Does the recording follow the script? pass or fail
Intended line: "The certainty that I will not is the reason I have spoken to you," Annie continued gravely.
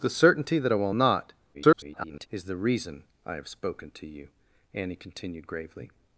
fail